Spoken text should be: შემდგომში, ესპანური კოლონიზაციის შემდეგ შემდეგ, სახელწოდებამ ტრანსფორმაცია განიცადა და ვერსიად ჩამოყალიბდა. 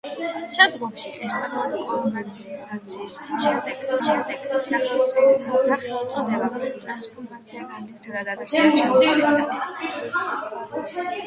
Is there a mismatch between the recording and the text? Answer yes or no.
no